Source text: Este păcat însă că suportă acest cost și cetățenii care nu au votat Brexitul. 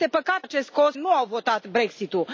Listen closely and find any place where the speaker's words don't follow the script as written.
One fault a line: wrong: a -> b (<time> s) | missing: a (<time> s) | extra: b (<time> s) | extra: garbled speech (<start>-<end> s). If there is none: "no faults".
missing: însă că suportă (0.5 s)
missing: și cetățenii care (1.0 s)